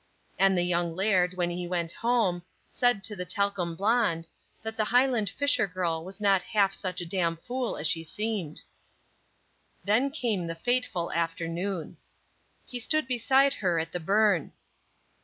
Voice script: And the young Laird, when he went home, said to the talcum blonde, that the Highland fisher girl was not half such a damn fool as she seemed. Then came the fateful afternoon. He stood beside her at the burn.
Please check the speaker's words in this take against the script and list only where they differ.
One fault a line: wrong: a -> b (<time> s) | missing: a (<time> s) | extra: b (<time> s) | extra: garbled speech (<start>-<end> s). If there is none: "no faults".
no faults